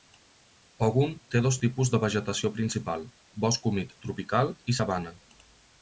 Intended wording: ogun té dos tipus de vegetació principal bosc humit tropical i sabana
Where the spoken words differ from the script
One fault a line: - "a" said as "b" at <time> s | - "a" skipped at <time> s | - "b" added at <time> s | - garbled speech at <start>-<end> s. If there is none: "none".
none